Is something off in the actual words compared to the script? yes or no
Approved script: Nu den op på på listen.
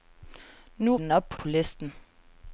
no